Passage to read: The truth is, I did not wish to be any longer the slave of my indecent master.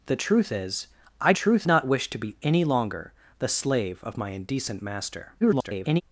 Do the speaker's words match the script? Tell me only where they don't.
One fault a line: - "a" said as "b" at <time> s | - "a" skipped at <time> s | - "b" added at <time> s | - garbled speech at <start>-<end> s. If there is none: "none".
- "did" said as "truth" at 1.3 s
- garbled speech at 5.4-6.0 s